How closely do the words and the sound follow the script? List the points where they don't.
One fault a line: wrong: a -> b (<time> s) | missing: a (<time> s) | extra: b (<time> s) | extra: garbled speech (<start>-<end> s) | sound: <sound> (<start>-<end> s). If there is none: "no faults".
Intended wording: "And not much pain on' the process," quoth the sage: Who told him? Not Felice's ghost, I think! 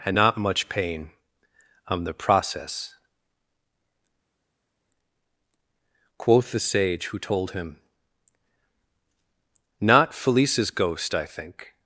no faults